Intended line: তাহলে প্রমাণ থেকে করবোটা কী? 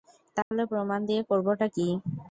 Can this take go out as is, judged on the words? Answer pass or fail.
fail